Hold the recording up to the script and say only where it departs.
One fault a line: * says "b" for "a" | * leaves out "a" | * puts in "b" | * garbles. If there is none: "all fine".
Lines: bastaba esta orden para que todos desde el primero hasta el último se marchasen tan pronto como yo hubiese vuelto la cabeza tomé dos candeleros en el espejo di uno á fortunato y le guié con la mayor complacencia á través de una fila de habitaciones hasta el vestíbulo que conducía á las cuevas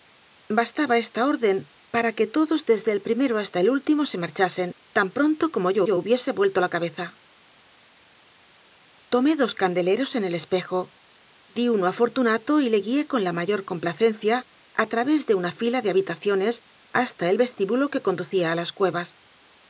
* puts in "yo"